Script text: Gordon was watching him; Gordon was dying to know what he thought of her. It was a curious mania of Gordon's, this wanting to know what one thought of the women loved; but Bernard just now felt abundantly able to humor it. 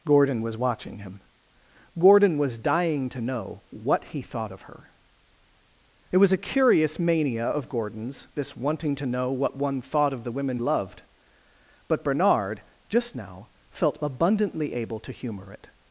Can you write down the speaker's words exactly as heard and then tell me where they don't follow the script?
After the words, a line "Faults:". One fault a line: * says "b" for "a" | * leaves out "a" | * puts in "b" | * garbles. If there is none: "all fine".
Gordon was watching him; Gordon was dying to know what he thought of her. It was a curious mania of Gordon's, this wanting to know what one thought of the women loved; but Bernard just now felt abundantly able to humor it.
Faults:
all fine